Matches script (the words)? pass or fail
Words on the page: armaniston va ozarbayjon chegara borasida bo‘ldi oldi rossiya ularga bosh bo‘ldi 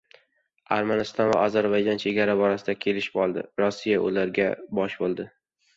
fail